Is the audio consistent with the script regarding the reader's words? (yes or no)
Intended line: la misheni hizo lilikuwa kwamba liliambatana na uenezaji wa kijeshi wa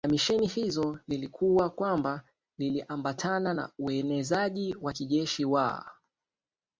yes